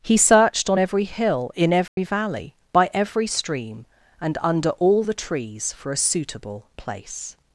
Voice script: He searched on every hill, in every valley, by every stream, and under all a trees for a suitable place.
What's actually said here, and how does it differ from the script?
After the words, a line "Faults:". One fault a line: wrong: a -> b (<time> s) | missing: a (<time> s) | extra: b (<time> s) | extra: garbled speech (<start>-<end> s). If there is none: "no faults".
He searched on every hill, in every valley, by every stream, and under all the trees for a suitable place.
Faults:
wrong: a -> the (5.0 s)